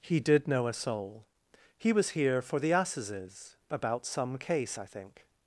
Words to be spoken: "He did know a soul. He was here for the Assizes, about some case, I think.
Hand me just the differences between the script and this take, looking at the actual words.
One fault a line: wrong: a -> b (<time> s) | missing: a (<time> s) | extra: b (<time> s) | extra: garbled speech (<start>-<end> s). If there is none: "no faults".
no faults